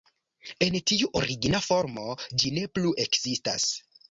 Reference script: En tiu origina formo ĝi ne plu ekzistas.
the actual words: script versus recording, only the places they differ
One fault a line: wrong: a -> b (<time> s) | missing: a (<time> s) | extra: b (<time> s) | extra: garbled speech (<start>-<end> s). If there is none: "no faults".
no faults